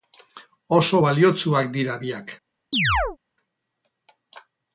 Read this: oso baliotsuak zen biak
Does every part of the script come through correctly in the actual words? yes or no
no